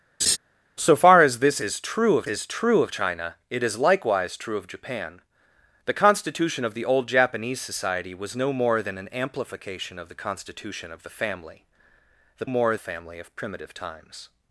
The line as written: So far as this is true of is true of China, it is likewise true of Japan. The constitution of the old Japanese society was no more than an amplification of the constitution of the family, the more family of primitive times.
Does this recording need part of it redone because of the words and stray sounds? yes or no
yes